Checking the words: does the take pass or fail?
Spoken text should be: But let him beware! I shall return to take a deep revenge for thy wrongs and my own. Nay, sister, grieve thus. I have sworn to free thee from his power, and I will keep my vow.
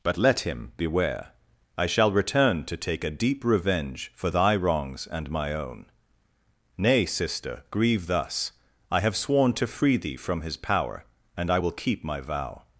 pass